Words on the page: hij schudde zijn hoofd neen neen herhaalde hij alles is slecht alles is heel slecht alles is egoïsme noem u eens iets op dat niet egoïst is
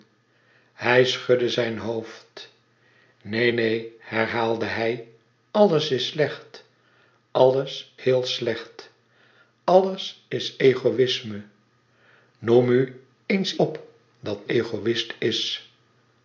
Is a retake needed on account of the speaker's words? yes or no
yes